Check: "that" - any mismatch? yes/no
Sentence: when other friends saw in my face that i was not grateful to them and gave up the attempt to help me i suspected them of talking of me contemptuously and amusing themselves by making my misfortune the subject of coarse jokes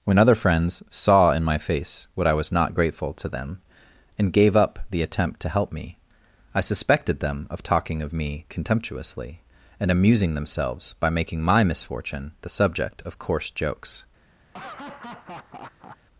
yes